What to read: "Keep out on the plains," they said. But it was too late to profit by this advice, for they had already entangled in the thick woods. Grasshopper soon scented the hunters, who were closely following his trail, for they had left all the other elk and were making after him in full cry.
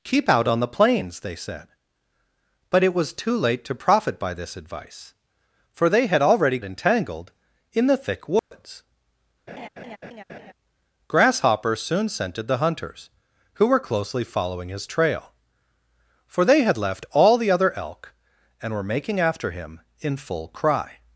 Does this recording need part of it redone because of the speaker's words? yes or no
no